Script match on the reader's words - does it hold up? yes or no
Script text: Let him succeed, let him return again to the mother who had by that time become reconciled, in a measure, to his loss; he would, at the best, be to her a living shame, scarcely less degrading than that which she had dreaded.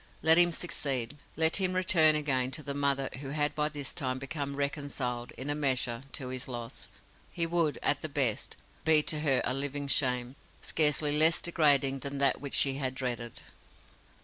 no